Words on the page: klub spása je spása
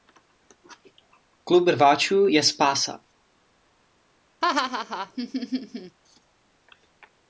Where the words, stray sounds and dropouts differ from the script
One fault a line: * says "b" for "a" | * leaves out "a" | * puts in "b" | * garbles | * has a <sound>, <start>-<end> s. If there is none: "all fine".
* says "rváčů" for "spása"
* has a laugh, 4.4-6.0 s